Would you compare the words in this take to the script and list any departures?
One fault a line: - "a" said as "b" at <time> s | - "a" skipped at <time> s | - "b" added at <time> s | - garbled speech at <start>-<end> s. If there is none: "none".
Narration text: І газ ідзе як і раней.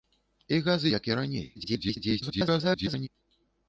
- "ідзе" skipped at 0.8 s
- garbled speech at 1.6-3.1 s